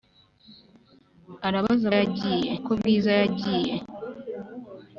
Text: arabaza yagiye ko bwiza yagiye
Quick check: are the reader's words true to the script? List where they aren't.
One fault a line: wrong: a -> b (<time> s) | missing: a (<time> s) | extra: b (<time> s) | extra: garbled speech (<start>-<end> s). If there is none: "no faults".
no faults